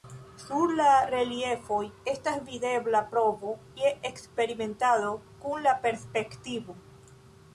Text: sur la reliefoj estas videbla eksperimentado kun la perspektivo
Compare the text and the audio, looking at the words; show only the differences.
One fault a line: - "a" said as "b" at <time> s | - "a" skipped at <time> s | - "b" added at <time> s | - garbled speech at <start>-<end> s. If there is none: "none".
- "provo je" added at 3.1 s